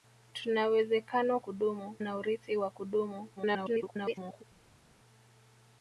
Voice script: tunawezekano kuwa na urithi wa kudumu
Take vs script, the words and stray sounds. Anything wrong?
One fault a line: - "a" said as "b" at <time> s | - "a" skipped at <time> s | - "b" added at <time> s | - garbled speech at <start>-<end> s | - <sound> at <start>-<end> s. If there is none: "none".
- "kuwa" said as "kudumu" at 1.4 s
- garbled speech at 3.4-4.4 s